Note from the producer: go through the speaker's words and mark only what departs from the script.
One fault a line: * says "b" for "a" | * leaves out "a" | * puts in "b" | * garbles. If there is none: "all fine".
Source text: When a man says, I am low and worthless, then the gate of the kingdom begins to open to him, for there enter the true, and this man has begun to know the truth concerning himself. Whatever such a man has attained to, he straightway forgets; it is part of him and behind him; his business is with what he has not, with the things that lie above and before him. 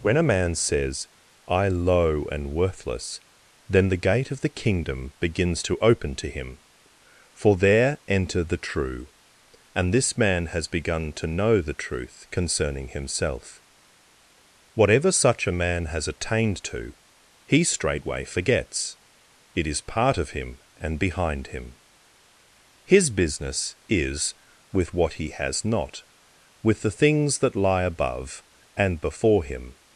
* leaves out "am"